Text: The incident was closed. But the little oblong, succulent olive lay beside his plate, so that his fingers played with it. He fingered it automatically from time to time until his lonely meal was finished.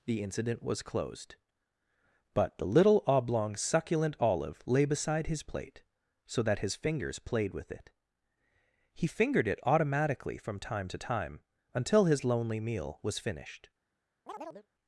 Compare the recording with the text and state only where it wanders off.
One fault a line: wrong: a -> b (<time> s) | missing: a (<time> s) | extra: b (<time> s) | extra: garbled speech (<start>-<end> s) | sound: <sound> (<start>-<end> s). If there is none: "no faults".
sound: chirp (14.3-14.7 s)